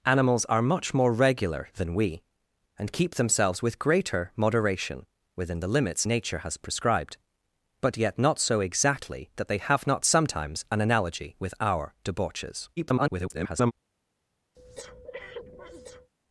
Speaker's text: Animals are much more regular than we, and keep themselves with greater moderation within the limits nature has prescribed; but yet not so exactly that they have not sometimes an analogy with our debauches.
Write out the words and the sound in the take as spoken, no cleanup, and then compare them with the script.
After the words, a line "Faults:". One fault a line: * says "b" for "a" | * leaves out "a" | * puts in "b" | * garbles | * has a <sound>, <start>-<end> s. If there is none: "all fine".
Animals are much more regular than we, and keep themselves with greater moderation within the limits nature has prescribed; but yet not so exactly that they have not sometimes an analogy with our debauches. [garbled]
Faults:
* garbles
* has a breath, 14.5-16.1 s